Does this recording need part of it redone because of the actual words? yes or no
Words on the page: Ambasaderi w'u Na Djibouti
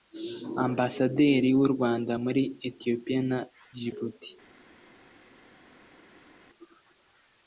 yes